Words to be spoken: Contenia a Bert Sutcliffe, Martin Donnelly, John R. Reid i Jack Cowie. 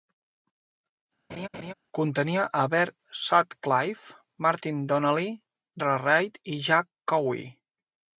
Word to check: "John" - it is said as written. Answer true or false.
false